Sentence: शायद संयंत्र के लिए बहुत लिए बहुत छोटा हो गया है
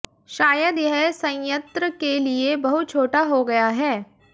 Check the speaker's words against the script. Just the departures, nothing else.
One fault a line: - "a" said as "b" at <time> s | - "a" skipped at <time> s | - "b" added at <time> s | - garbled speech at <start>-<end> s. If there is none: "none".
- "यह" added at 0.8 s
- "लिए बहुत" skipped at 2.9 s